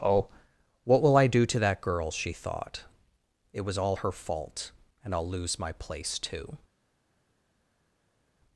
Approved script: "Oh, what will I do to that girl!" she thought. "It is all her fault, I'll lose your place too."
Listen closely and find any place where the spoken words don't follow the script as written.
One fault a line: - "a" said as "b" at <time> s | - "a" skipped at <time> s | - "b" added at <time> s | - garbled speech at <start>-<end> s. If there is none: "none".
- "is" said as "was" at 3.6 s
- "and" added at 5.0 s
- "your" said as "my" at 5.6 s